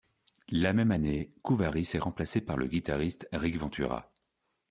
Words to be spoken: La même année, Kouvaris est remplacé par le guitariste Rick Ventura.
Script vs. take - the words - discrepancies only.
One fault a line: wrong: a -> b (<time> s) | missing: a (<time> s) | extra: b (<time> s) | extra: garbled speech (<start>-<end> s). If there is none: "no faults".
no faults